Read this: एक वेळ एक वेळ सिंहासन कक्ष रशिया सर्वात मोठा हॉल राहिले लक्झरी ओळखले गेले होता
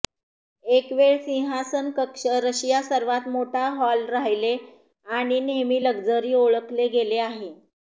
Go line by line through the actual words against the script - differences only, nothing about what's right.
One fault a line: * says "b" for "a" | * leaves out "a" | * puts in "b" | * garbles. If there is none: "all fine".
* leaves out "एक वेळ"
* puts in "आणि नेहमी"
* says "आहे" for "होता"